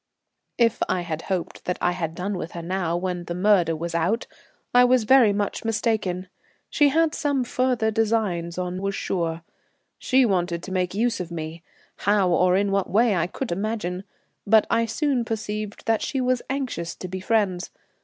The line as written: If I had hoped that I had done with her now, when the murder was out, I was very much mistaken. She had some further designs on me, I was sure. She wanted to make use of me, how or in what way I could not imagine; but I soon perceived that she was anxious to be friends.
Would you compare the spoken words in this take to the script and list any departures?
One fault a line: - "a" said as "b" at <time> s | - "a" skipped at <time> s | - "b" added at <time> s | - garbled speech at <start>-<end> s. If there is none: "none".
- "me I" skipped at 8.8 s
- "not" skipped at 13.5 s